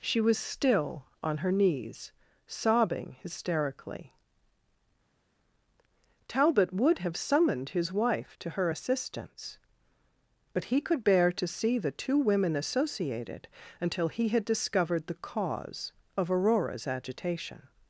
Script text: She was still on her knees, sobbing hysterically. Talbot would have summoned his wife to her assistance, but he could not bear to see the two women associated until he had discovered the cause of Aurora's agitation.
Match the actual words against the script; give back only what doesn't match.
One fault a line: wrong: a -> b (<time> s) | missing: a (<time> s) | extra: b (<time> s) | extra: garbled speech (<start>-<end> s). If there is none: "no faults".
missing: not (11.0 s)